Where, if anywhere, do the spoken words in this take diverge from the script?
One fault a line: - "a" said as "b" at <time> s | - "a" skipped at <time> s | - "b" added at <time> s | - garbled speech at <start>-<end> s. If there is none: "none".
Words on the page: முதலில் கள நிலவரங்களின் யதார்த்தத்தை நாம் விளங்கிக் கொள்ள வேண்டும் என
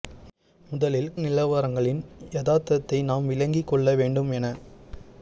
- "கள" skipped at 1.1 s